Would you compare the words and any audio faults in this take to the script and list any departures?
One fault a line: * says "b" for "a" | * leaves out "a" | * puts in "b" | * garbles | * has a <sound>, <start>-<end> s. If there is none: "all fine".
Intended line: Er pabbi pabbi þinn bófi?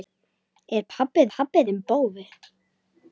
all fine